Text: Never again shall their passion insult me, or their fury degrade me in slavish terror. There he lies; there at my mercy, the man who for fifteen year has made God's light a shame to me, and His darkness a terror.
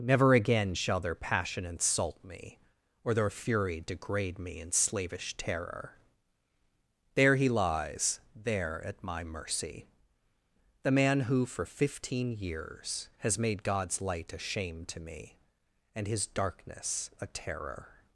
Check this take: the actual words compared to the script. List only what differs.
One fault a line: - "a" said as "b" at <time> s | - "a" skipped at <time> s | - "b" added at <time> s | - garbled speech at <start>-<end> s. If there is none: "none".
- "year" said as "years" at 12.3 s